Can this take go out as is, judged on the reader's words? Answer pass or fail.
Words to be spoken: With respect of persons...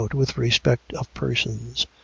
pass